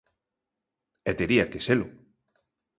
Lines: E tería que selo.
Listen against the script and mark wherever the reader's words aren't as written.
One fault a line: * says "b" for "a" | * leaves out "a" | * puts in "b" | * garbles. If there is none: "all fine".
all fine